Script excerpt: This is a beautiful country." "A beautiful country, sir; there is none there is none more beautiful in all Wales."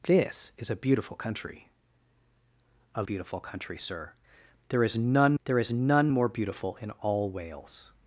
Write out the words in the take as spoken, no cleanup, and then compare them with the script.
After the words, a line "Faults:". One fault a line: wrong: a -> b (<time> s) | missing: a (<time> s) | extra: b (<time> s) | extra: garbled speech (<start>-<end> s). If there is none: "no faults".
This is a beautiful country." "A beautiful country, sir; there is none there is none more beautiful in all Wales."
Faults:
no faults